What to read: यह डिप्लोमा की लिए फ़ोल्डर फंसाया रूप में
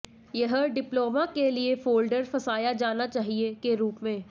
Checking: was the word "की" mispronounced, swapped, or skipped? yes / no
yes